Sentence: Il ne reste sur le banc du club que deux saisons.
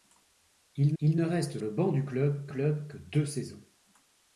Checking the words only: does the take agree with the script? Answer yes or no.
no